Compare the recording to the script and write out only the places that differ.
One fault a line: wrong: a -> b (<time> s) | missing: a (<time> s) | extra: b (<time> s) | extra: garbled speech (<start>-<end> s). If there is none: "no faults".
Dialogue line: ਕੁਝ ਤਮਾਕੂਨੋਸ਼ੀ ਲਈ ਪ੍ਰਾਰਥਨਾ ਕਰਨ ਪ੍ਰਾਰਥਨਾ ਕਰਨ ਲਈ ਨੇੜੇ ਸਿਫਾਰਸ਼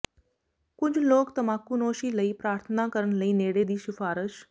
extra: ਲੋਕ (1.0 s)
missing: ਪ੍ਰਾਰਥਨਾ ਕਰਨ (3.1 s)
extra: ਦੀ (3.6 s)